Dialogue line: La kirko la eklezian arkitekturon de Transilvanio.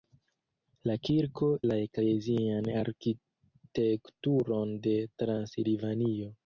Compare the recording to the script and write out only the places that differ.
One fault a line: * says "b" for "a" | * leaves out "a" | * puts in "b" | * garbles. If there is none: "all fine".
all fine